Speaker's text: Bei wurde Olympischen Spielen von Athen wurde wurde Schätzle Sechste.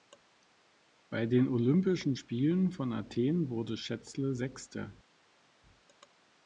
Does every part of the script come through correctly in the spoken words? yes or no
no